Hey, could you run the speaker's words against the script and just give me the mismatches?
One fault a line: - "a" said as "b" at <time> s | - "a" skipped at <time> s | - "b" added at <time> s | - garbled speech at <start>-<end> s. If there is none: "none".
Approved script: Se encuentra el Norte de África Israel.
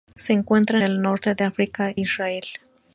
none